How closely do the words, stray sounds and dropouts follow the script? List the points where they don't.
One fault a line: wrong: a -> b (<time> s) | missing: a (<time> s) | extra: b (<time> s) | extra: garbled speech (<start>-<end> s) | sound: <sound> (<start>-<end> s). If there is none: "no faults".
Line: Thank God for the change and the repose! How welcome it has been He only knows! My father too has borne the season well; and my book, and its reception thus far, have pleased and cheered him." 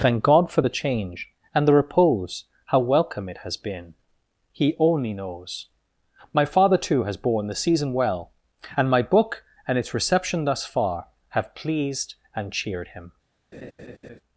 sound: laugh (13.5-14.2 s)